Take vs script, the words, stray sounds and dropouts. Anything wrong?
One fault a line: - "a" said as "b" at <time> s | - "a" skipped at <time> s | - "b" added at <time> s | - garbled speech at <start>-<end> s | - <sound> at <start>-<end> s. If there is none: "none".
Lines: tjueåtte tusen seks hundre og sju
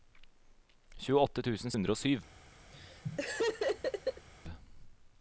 - "seks" skipped at 1.8 s
- laugh at 2.7-4.3 s